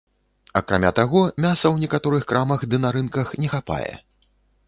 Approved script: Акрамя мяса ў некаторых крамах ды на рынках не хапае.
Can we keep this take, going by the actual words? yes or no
no